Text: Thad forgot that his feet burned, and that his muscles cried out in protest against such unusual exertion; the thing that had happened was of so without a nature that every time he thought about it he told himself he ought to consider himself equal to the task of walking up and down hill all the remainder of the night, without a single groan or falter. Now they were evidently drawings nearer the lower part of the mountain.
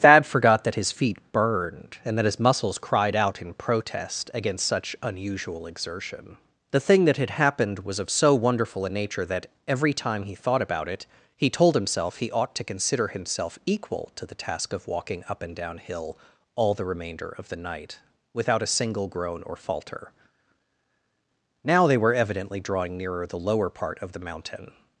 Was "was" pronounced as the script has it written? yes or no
yes